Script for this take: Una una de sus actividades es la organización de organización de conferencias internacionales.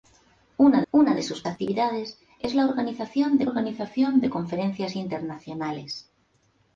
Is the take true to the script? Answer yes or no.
yes